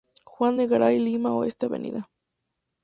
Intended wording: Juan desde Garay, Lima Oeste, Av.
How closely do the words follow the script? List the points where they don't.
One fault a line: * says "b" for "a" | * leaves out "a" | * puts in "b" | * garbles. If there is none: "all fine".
* says "de" for "desde"